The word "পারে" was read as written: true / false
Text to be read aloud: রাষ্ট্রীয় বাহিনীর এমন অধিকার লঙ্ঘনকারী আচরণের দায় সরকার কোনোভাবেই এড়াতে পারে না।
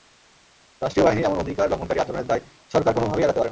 true